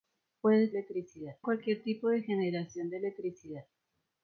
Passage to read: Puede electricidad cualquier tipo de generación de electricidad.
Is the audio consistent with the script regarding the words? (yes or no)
yes